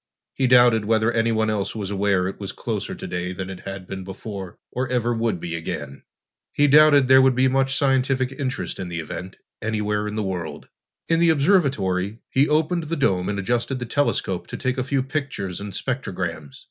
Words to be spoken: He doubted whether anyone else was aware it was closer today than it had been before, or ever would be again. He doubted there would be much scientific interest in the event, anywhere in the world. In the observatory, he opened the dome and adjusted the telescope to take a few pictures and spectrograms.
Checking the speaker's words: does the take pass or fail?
pass